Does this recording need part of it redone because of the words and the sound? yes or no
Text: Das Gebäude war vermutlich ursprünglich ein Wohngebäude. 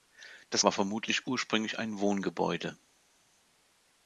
yes